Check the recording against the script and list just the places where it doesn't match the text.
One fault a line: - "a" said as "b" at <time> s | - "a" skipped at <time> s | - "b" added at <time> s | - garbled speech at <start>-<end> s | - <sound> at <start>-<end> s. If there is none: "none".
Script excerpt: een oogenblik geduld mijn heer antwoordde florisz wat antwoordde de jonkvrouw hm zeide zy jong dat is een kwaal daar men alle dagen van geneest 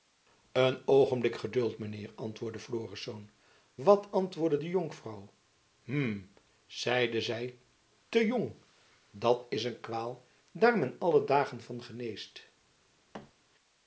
- "te" added at 8.1 s
- thud at 13.1-13.3 s